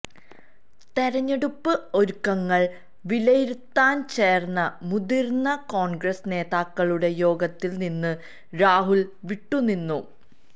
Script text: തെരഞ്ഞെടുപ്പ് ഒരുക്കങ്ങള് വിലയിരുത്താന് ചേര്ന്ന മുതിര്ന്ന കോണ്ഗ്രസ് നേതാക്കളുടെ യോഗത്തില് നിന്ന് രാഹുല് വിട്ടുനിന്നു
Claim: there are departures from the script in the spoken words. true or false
false